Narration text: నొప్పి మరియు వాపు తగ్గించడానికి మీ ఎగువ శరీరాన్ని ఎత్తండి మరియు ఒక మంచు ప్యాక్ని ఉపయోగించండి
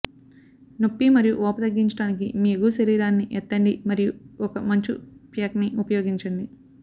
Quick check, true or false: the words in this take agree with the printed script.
true